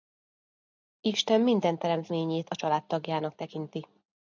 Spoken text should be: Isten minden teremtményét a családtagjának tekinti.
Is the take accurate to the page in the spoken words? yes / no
yes